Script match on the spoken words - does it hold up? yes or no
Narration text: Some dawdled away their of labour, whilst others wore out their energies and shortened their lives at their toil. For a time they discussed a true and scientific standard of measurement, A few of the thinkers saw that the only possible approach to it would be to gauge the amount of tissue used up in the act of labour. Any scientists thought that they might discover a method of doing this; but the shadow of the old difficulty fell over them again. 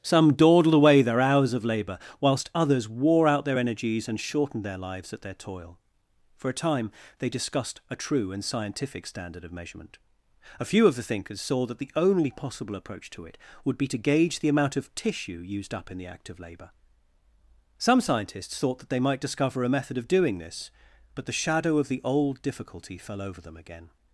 no